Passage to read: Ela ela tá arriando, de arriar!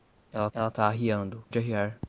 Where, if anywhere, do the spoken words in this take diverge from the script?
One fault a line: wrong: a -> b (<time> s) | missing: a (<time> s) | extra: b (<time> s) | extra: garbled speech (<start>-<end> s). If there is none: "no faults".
no faults